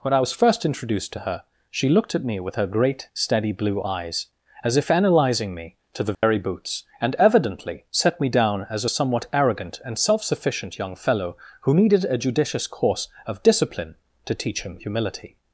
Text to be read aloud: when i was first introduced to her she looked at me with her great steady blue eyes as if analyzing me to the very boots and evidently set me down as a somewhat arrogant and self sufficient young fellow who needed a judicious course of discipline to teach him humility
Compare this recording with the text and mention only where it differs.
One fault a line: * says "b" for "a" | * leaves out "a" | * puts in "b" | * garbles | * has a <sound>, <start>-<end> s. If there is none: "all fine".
* has a dropout, 6.1-6.2 s